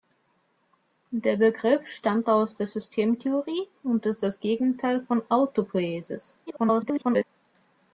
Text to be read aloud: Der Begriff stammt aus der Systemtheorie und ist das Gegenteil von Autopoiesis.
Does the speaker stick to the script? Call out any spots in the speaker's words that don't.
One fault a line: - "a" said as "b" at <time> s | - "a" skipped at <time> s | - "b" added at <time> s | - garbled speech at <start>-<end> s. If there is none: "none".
- garbled speech at 6.5-7.2 s